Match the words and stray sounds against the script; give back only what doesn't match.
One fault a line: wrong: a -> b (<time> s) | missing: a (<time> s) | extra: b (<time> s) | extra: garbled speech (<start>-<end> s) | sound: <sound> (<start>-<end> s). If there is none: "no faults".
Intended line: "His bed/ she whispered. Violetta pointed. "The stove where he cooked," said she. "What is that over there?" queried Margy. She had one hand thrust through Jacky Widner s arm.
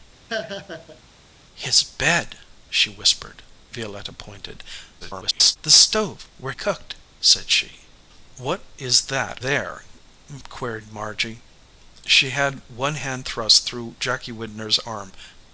sound: laugh (0.3-1.0 s)
extra: garbled speech (5.0-5.6 s)
missing: he (6.5 s)
missing: over (9.4 s)